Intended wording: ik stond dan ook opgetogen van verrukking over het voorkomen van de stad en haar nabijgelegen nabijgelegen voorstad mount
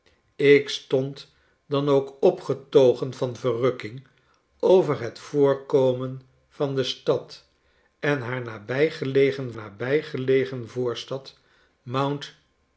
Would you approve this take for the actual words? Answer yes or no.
yes